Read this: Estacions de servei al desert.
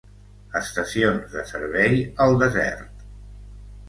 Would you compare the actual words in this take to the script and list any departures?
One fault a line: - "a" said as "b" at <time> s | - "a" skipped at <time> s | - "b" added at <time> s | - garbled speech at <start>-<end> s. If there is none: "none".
none